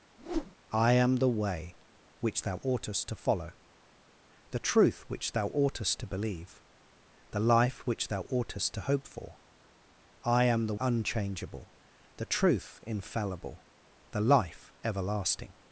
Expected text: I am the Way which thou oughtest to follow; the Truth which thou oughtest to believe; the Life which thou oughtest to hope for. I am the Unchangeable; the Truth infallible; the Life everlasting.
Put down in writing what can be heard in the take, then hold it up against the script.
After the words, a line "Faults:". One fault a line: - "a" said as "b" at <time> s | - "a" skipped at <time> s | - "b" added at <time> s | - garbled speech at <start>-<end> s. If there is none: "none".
I am the Way which thou oughtest to follow; the Truth which thou oughtest to believe; the Life which thou oughtest to hope for. I am the Unchangeable; the Truth infallible; the Life everlasting.
Faults:
none